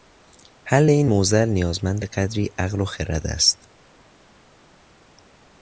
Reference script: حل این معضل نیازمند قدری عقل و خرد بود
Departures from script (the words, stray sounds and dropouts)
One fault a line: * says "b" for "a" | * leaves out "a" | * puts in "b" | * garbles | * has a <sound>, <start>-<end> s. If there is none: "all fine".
* says "است" for "بود"